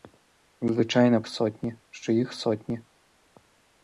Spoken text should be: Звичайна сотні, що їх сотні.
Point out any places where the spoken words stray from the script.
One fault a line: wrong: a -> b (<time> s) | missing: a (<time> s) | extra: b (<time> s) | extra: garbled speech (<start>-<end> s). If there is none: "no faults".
no faults